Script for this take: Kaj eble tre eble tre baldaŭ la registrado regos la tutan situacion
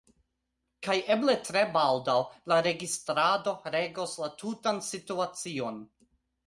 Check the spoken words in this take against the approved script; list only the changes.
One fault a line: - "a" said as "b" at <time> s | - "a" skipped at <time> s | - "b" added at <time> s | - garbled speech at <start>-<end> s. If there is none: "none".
- "eble tre" skipped at 1.6 s